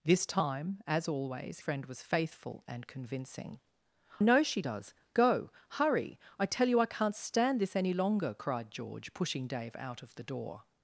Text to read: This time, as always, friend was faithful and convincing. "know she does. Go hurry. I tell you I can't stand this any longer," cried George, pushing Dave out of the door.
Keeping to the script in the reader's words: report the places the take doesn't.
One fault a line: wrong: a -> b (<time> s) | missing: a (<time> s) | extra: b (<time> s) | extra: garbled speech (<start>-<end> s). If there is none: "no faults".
no faults